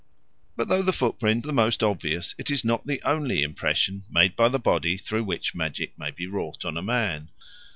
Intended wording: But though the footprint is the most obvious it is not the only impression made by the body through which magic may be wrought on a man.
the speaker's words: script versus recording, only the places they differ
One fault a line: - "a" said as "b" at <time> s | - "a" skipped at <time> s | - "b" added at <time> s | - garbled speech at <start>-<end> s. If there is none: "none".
- "is" skipped at 1.5 s